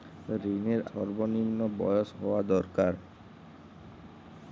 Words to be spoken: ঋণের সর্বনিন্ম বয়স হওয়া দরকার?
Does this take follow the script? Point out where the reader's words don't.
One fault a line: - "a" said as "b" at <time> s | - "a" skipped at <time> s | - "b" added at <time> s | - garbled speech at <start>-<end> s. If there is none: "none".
none